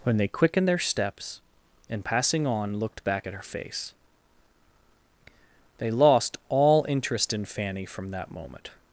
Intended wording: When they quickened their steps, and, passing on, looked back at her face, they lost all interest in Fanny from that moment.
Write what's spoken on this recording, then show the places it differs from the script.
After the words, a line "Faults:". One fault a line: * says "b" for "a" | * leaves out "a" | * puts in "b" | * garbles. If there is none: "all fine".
When they quickened their steps, and, passing on, looked back at her face, they lost all interest in Fanny from that moment.
Faults:
all fine